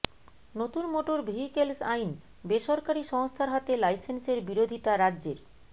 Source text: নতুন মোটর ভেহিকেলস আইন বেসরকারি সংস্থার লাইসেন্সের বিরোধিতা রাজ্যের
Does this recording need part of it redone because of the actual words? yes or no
yes